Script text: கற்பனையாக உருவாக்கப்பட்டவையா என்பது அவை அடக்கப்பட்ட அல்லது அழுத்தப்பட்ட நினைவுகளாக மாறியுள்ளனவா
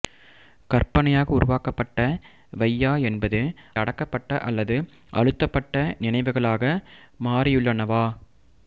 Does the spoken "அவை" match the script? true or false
false